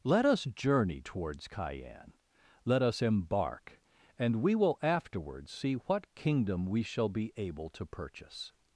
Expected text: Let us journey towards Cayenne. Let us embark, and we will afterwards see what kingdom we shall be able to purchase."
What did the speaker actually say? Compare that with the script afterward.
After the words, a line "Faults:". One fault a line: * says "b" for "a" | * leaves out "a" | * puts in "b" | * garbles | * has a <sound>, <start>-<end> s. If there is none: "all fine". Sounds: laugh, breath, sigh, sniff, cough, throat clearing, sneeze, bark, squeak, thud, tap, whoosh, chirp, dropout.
Let us journey towards Cayenne. Let us embark, and we will afterwards see what kingdom we shall be able to purchase."
Faults:
all fine